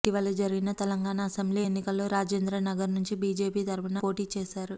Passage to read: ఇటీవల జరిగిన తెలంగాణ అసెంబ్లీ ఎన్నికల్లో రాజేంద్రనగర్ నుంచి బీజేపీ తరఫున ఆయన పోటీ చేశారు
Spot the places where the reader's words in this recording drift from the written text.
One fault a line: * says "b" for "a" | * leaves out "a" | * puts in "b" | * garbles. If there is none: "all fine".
* leaves out "ఆయన"